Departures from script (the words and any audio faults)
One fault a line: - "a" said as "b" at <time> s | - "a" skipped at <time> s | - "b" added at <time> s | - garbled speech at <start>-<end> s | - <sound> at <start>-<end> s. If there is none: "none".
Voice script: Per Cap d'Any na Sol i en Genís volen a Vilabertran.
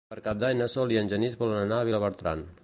- "anar" added at 1.6 s